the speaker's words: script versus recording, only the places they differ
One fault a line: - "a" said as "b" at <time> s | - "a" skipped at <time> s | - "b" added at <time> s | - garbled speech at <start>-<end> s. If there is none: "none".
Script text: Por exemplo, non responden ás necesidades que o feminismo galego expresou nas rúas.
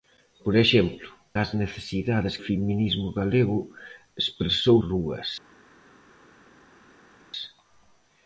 - "non responden" skipped at 1.1 s
- "que" skipped at 2.4 s
- "nas" skipped at 4.8 s